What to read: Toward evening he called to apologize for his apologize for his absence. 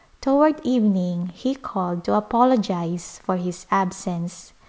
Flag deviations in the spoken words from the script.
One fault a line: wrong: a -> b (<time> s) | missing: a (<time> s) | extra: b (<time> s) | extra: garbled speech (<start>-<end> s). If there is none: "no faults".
missing: apologize for his (3.7 s)